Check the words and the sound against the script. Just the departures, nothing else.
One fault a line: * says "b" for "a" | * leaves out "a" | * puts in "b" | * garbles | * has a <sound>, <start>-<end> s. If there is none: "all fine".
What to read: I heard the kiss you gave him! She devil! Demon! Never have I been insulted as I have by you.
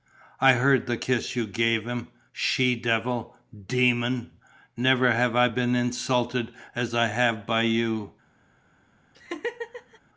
* has a laugh, 9.1-10.0 s